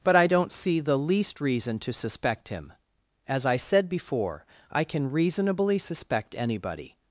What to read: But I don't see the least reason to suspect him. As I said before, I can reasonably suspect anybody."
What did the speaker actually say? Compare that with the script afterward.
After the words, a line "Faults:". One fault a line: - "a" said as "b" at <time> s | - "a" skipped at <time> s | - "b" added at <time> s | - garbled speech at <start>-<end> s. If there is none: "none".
But I don't see the least reason to suspect him. As I said before, I can reasonably suspect anybody."
Faults:
none